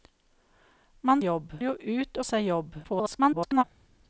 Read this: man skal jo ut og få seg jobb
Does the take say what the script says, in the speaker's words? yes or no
no